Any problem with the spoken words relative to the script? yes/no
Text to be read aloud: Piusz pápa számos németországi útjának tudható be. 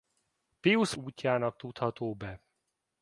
yes